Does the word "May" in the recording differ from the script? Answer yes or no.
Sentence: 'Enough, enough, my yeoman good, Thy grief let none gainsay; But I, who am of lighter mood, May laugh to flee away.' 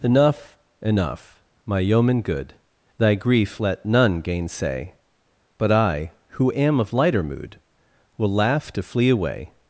yes